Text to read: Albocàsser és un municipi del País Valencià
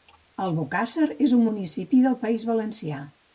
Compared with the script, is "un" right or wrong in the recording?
right